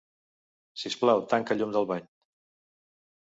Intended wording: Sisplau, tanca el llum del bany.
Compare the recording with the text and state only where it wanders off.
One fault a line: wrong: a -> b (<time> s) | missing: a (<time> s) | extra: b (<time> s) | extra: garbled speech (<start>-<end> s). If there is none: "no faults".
no faults